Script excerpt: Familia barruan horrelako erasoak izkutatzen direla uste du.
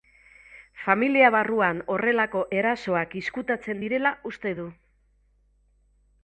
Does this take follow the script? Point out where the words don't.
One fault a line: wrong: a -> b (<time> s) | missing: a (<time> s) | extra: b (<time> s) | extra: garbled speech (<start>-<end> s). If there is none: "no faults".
no faults